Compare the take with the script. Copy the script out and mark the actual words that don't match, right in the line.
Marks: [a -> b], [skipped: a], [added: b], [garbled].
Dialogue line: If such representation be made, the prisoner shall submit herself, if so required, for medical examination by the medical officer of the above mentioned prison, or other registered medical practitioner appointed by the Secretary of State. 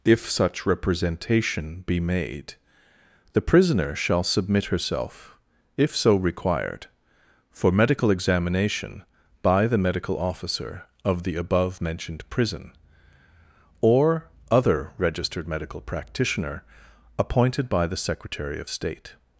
If such representation be made, the prisoner shall submit herself, if so required, for medical examination by the medical officer of the above mentioned prison, or other registered medical practitioner appointed by the Secretary of State.